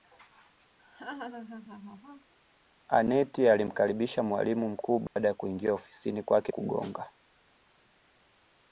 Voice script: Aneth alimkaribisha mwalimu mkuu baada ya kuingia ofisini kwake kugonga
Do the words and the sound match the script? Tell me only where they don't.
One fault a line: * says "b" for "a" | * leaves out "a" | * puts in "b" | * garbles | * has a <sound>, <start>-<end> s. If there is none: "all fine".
* has a laugh, 0.8-2.3 s
* has a dropout, 5.1-5.2 s